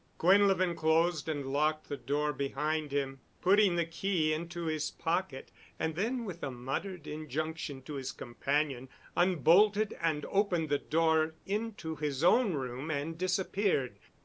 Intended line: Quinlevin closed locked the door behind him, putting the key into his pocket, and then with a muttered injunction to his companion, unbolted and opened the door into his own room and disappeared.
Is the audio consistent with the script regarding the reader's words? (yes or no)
no